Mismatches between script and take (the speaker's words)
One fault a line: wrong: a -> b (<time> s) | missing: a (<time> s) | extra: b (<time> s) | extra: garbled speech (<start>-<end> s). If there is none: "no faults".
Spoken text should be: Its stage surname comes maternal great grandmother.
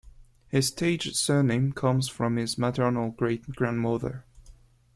wrong: Its -> His (0.5 s)
extra: from his (2.1 s)